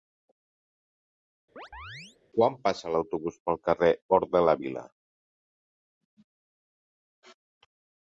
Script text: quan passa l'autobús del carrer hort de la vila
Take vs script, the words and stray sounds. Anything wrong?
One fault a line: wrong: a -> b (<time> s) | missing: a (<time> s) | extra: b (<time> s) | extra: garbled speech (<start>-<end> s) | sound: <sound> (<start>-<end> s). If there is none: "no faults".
sound: chirp (1.6-2.2 s)
wrong: del -> pel (3.5 s)